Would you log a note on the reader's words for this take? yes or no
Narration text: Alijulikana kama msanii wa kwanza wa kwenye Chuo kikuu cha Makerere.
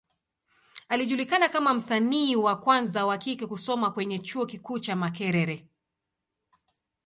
yes